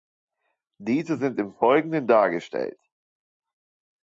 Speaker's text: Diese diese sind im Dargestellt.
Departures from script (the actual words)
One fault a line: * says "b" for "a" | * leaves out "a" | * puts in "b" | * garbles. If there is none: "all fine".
* leaves out "diese"
* puts in "Folgenden"